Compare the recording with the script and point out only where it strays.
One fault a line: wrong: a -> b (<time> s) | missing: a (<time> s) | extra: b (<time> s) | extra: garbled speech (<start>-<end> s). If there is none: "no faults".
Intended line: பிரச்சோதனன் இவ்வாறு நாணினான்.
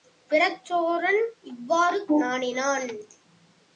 no faults